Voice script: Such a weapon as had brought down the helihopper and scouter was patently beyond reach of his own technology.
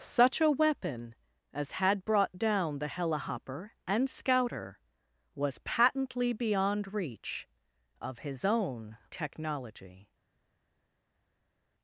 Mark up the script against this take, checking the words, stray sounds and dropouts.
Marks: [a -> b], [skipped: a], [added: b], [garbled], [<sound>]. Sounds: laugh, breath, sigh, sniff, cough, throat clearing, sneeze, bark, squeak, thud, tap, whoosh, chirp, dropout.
Such a weapon as had brought down the helihopper and scouter was patently beyond reach of his own technology.